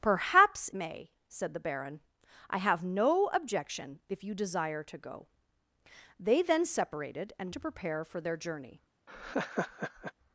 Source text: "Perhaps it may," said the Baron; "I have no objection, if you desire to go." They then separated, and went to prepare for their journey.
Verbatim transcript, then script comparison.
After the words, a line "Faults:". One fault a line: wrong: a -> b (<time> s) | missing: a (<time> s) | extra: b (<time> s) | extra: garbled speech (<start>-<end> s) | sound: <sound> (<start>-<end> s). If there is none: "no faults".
"Perhaps may," said the Baron; "I have no objection, if you desire to go." They then separated, and to prepare for their journey.
Faults:
missing: it (0.7 s)
missing: went (7.5 s)
sound: laugh (9.1-10.1 s)